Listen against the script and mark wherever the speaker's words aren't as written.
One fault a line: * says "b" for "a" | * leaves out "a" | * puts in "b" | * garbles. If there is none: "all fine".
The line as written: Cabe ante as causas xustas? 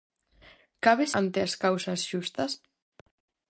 all fine